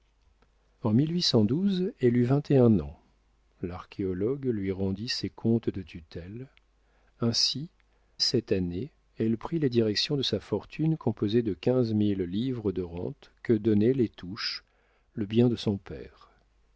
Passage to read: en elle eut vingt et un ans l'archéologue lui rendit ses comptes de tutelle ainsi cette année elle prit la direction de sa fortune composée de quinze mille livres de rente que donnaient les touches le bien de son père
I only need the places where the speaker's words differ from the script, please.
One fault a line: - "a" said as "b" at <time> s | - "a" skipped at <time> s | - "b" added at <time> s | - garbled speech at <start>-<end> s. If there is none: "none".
none